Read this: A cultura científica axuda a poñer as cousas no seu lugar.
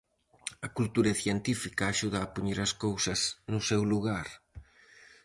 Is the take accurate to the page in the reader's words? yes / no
yes